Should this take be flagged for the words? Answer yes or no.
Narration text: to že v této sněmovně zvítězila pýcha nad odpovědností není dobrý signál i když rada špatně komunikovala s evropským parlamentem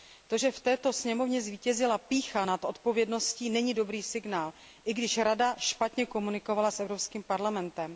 no